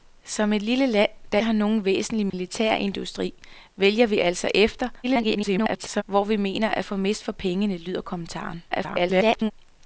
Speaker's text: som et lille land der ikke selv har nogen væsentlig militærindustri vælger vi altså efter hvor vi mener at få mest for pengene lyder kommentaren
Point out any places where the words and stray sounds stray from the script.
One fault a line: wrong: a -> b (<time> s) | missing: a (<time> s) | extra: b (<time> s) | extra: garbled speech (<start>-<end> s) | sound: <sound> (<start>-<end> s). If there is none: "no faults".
missing: ikke selv (1.4 s)
sound: dropout (2.3-2.3 s)
extra: garbled speech (5.0-6.0 s)
extra: garbled speech (8.7-9.5 s)